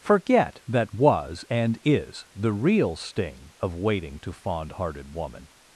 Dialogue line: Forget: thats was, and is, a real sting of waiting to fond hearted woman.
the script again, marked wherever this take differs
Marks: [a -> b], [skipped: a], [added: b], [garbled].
Forget: [thats -> that] was, and is, [a -> the] real sting of waiting to fond hearted woman.